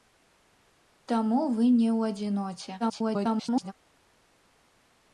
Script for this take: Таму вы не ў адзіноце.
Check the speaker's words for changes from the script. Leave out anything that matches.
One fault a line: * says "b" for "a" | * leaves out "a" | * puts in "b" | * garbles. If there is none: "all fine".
* garbles